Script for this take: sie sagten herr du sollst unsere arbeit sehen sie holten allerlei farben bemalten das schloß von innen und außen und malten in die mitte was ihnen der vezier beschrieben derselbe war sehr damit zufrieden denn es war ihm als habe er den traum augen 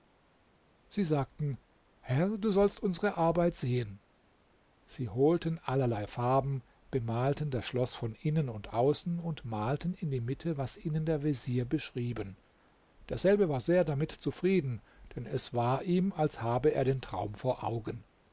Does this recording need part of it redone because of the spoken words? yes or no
yes